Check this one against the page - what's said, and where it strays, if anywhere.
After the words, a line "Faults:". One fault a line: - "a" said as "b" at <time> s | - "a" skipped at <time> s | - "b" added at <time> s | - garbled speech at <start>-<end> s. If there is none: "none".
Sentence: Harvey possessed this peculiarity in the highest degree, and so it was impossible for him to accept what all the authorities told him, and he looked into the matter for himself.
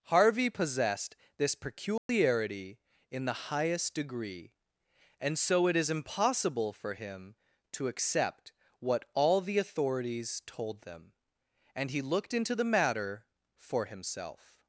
Harvey possessed this peculiarity in the highest degree, and so it is impossible for him to accept what all the authorities told them, and he looked into the matter for himself.
Faults:
- "was" said as "is" at 5.8 s
- "him" said as "them" at 10.8 s